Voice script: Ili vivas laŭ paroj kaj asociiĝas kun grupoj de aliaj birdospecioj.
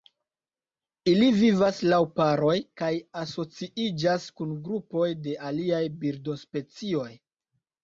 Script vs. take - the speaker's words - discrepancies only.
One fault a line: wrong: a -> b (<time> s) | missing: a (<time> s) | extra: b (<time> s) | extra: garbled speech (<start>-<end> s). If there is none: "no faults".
no faults